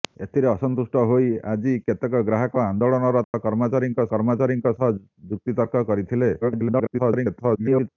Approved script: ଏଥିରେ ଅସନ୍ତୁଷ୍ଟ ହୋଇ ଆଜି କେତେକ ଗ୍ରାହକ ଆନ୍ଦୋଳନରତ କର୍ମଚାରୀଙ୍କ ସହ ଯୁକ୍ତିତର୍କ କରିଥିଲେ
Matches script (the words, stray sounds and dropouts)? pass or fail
fail